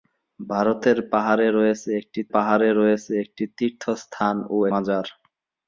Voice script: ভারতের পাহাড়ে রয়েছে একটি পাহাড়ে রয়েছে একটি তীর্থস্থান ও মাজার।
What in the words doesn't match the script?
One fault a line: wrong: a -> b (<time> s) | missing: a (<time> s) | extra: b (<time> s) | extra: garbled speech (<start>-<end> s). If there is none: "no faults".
no faults